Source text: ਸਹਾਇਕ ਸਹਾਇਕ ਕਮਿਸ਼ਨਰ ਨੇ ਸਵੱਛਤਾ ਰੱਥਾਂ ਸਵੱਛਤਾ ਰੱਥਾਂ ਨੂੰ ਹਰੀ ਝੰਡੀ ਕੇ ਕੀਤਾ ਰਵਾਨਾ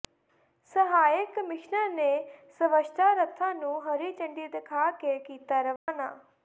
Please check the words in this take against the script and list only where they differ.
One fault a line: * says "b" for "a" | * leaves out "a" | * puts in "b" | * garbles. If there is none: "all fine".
* leaves out "ਸਹਾਇਕ"
* leaves out "ਸਵੱਛਤਾ ਰੱਥਾਂ"
* puts in "ਦਿਖਾ"